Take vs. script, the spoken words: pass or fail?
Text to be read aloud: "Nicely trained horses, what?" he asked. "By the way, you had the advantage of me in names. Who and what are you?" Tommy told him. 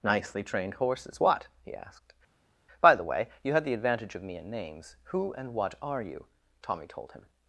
pass